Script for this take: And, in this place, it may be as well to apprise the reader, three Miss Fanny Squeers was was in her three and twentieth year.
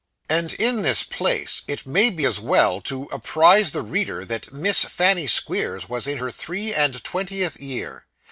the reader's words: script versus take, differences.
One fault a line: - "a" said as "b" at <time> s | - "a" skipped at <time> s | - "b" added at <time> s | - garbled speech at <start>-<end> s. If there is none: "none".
- "three" said as "that" at 4.3 s
- "was" skipped at 6.0 s